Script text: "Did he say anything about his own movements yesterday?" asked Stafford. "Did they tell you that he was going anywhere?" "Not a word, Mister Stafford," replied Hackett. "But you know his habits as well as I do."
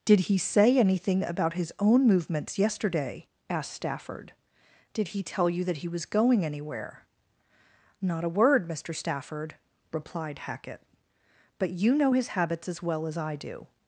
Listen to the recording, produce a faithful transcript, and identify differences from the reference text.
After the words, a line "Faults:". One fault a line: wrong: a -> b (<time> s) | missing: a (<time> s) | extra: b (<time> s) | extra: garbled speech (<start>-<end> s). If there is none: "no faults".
"Did he say anything about his own movements yesterday?" asked Stafford. "Did he tell you that he was going anywhere?" "Not a word, Mister Stafford," replied Hackett. "But you know his habits as well as I do."
Faults:
wrong: they -> he (5.1 s)